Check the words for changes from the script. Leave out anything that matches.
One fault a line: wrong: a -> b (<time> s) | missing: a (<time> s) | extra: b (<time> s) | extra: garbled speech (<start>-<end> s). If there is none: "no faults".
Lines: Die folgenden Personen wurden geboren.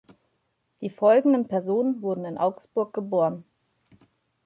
extra: in Augsburg (2.2 s)